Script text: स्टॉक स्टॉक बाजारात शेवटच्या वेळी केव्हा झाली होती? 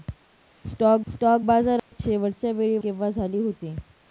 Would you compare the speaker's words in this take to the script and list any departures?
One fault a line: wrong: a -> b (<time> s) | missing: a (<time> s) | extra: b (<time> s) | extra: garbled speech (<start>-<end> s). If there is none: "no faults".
no faults